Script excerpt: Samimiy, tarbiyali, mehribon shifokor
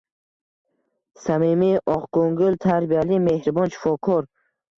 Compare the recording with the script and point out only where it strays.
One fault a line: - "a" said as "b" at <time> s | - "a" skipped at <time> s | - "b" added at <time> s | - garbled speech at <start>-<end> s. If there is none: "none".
- "oqko`ngil" added at 2.0 s